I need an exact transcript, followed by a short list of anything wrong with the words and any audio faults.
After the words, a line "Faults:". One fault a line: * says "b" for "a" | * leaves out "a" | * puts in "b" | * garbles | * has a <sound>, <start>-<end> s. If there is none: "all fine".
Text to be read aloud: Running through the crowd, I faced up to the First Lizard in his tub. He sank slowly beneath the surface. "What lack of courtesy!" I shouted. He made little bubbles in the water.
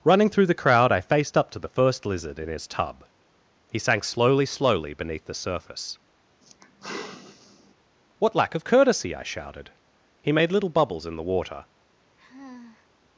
Running through the crowd, I faced up to the First Lizard in his tub. He sank slowly slowly beneath the surface. "What lack of courtesy!" I shouted. He made little bubbles in the water.
Faults:
* puts in "slowly"
* has a sigh, 6.4-7.7 s
* has a sigh, 12.2-12.9 s